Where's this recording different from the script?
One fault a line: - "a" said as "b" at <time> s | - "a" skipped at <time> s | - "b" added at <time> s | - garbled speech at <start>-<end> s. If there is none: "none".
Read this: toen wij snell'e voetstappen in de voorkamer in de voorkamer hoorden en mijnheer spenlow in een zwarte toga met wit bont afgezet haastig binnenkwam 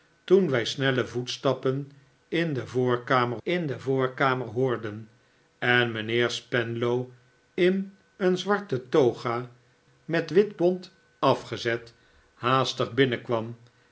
none